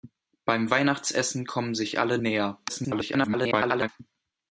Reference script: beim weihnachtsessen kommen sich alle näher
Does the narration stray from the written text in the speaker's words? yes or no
yes